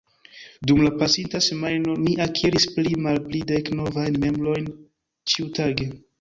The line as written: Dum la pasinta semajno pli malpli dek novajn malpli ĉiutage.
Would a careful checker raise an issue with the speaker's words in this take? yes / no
yes